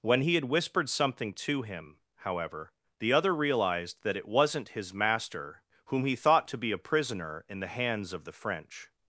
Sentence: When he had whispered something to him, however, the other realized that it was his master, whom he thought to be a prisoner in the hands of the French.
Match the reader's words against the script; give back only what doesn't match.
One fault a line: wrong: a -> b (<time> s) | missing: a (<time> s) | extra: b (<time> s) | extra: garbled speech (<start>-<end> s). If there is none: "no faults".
wrong: was -> wasn't (4.3 s)